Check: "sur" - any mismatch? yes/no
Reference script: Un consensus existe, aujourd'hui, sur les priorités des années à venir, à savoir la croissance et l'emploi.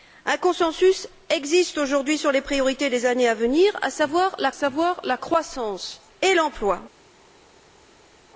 no